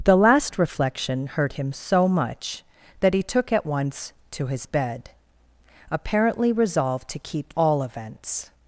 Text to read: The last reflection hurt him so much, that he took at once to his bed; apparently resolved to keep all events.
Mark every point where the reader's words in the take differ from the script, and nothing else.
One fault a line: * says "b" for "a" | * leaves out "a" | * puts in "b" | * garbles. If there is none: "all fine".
all fine